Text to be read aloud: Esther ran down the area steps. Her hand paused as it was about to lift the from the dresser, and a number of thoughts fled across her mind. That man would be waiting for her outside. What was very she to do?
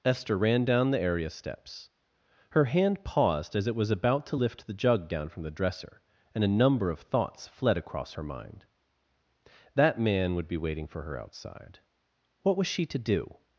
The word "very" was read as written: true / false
false